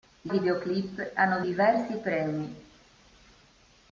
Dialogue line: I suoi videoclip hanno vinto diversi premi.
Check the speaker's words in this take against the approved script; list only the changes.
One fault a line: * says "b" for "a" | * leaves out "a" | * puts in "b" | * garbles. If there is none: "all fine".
* leaves out "suoi"
* leaves out "vinto"